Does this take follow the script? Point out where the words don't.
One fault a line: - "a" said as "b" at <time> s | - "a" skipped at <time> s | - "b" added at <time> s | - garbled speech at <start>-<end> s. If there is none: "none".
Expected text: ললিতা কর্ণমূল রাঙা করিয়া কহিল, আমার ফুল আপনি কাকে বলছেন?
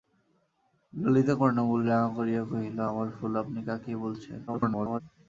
- garbled speech at 4.5-5.0 s